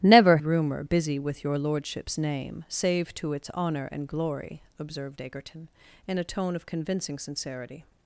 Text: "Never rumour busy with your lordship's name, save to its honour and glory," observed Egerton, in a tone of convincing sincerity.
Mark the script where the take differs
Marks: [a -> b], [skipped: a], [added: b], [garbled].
"Never rumour busy with your lordship's name, save to its honour and glory," observed Egerton, in a tone of convincing sincerity.